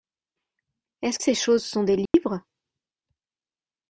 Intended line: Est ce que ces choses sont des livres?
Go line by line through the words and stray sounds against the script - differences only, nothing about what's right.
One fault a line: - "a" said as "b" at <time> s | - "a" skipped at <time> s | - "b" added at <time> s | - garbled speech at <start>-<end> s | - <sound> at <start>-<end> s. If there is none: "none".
- "que" skipped at 1.2 s
- dropout at 2.1-2.1 s